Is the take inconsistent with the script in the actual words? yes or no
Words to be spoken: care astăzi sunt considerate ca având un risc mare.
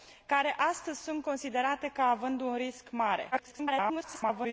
yes